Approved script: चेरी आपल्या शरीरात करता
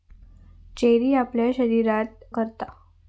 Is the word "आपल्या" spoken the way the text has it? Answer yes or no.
yes